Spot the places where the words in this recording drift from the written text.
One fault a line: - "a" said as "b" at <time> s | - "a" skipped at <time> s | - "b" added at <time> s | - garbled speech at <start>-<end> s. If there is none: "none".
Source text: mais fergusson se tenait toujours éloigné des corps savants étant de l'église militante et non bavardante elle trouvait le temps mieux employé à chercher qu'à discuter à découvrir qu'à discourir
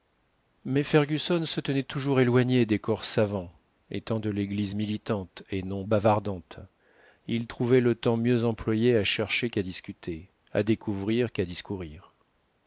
- "elle" said as "il" at 7.3 s